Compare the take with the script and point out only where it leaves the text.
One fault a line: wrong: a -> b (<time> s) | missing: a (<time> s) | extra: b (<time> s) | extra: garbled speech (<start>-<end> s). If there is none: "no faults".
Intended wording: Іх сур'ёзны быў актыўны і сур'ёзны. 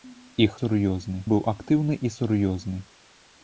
no faults